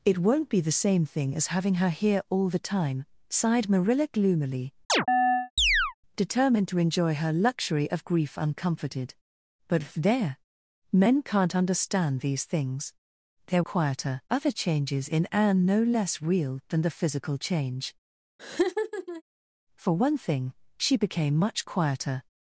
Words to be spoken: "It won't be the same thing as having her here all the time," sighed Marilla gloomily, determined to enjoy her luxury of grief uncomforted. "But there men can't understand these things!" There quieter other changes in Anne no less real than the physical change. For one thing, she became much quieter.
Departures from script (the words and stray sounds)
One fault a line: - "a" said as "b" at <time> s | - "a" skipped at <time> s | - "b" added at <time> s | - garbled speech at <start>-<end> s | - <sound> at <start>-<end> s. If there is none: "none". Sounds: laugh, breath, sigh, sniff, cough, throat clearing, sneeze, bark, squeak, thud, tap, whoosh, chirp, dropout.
- chirp at 4.9-5.9 s
- laugh at 18.4-19.2 s